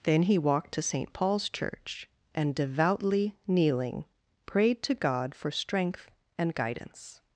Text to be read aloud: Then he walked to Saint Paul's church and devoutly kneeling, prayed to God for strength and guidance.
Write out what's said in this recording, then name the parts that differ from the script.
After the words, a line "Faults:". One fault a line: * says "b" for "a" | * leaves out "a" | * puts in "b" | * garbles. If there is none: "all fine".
Then he walked to Saint Paul's church and devoutly kneeling, prayed to God for strength and guidance.
Faults:
all fine